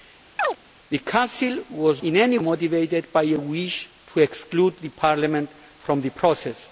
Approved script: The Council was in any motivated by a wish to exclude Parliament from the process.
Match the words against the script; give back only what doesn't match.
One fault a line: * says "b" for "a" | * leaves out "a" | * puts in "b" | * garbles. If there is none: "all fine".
all fine